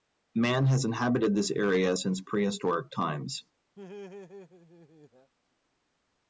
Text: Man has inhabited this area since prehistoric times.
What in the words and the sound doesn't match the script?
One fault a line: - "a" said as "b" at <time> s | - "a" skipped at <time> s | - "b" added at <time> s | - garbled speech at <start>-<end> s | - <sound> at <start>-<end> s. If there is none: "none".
- laugh at 3.8-5.3 s